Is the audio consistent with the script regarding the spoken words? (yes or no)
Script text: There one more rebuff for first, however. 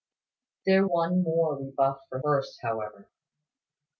yes